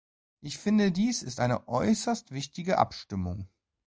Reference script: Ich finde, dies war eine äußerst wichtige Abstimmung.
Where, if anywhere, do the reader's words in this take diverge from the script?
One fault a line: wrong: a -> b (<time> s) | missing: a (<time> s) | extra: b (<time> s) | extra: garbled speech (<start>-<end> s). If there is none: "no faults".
wrong: war -> ist (1.2 s)